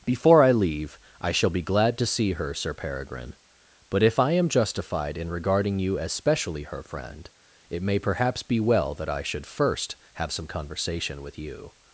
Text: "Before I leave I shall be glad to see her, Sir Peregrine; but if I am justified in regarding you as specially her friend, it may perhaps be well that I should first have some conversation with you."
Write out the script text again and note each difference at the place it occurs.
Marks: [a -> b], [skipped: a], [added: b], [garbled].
"Before I leave I shall be glad to see her, Sir Peregrine; but if I am justified in regarding you as specially her friend, it may perhaps be well that I should first have some conversation with you."